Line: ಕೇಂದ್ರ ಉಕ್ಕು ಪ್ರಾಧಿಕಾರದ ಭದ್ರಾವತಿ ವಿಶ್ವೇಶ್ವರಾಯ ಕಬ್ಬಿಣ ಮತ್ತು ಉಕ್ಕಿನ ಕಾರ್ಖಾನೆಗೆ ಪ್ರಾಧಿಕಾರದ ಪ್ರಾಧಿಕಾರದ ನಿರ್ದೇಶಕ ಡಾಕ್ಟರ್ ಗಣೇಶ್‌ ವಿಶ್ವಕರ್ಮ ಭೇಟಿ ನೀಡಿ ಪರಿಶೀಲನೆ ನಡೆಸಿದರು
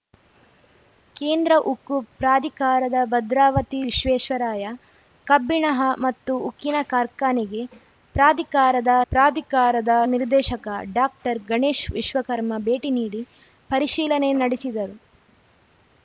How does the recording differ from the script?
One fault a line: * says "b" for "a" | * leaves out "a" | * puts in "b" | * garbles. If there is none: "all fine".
all fine